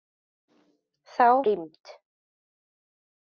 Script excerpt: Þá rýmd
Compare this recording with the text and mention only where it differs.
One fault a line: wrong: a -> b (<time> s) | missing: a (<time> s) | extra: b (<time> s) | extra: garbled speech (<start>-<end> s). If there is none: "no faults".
no faults